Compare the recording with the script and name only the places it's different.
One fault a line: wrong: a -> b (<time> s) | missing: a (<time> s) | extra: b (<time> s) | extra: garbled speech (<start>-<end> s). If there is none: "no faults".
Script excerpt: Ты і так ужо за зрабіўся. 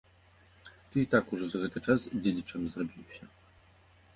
extra: гэты час дзедзічам (1.6 s)